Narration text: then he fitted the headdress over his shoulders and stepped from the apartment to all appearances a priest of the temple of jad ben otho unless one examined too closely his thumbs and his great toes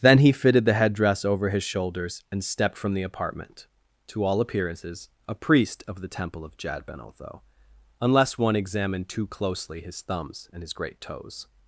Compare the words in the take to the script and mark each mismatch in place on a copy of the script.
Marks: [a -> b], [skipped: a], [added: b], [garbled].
then he fitted the headdress over his shoulders and stepped from the apartment to all appearances a priest of the temple of jad ben otho unless one examined too closely his thumbs and his great toes